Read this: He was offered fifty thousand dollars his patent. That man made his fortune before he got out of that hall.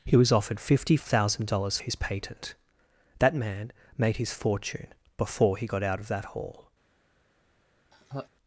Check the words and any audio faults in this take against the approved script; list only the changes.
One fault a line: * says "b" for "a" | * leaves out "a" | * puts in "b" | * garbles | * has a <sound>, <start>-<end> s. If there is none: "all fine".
* has a laugh, 7.9-8.3 s